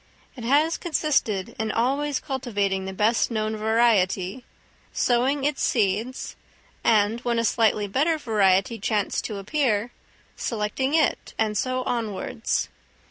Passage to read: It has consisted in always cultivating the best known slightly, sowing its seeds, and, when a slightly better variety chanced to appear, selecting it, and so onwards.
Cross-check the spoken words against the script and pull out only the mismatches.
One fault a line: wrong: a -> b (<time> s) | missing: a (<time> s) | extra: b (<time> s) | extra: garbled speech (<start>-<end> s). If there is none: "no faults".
wrong: slightly -> variety (3.5 s)